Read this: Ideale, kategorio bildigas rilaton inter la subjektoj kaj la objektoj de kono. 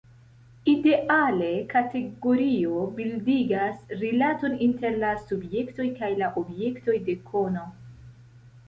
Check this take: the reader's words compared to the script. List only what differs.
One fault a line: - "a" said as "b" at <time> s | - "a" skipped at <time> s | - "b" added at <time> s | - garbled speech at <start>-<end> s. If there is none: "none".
none